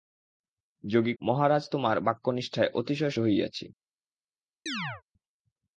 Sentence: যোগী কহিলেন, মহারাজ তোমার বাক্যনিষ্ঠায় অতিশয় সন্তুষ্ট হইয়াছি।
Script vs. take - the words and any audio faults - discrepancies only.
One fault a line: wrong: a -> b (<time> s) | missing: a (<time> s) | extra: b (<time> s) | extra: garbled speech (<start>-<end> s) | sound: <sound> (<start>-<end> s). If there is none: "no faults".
missing: কহিলেন (1.1 s)
missing: সন্তুষ্ট (3.1 s)
sound: chirp (4.7-5.0 s)